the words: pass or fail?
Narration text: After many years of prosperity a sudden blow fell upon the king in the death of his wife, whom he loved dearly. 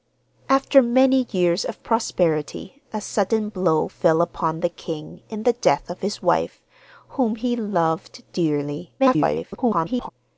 fail